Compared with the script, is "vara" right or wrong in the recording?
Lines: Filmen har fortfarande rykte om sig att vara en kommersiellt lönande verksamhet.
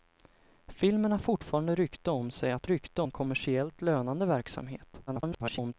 wrong